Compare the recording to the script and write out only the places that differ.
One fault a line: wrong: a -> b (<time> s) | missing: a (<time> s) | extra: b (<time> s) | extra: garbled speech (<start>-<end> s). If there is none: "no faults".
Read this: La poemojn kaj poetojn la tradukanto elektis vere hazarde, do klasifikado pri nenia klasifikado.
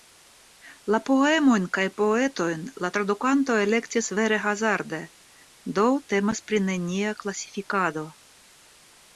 wrong: klasifikado -> temas (6.1 s)